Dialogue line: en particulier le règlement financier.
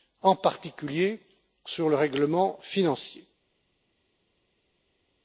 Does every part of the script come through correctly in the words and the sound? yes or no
no